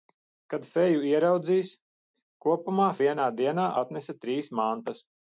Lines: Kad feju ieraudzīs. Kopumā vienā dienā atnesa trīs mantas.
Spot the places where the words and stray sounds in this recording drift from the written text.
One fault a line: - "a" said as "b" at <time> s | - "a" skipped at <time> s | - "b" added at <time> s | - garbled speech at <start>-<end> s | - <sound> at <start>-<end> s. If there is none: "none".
none